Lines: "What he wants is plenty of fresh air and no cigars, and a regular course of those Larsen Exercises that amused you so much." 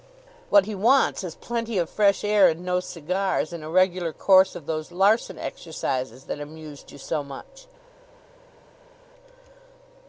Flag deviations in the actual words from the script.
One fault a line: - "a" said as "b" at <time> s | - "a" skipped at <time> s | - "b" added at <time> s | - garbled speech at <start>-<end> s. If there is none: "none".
none